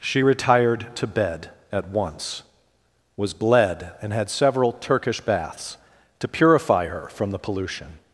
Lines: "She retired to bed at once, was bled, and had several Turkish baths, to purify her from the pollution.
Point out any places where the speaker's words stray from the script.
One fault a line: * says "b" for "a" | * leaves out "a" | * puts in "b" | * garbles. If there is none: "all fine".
all fine